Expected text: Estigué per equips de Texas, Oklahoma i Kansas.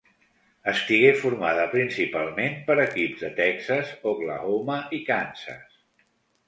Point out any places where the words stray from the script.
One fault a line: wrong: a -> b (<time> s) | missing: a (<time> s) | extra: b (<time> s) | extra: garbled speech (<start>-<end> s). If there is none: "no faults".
extra: formada principalment (1.2 s)